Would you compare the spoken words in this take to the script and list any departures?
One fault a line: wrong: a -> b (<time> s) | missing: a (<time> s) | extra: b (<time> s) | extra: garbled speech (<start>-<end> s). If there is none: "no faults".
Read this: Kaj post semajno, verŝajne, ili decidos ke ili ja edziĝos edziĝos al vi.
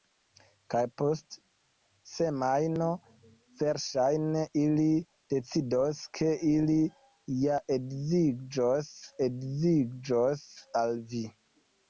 no faults